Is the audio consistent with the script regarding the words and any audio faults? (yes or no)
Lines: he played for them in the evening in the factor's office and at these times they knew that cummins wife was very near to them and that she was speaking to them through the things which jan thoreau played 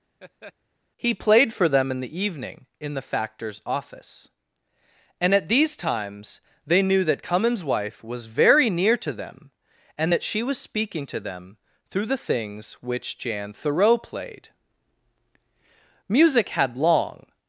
no